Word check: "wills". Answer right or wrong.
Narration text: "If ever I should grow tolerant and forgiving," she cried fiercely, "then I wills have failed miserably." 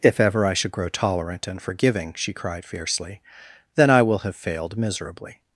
wrong